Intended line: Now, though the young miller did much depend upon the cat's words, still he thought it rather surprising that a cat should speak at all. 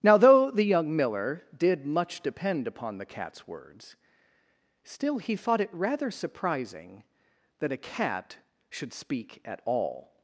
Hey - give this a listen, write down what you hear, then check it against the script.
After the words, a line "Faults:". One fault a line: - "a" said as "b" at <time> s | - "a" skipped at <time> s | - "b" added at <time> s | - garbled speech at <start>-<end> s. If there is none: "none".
Now, though the young miller did much depend upon the cat's words, still he thought it rather surprising that a cat should speak at all.
Faults:
none